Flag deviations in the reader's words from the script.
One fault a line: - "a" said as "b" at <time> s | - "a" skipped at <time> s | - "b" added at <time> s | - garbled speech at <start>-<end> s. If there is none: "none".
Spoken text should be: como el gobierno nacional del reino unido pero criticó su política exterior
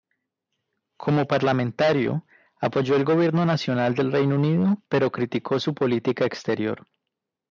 - "parlamentario apoyó" added at 1.3 s